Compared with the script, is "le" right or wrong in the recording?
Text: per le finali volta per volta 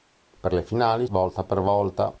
right